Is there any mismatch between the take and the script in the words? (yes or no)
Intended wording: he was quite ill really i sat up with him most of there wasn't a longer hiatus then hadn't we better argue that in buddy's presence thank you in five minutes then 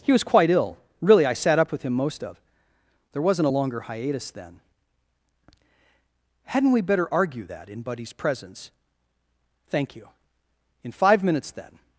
no